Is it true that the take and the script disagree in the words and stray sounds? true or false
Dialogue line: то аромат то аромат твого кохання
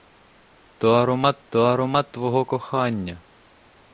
false